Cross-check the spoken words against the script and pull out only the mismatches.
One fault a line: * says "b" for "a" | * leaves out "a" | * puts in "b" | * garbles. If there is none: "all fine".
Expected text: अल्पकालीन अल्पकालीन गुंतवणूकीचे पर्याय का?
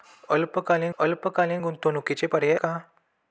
all fine